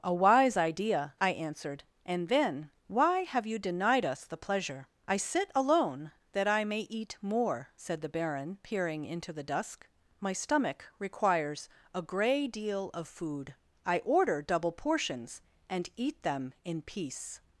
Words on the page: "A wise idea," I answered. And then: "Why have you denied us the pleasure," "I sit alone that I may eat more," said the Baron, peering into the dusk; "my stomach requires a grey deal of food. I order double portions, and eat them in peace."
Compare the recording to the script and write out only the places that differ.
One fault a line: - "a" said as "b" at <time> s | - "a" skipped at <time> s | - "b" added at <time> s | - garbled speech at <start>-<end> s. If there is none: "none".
none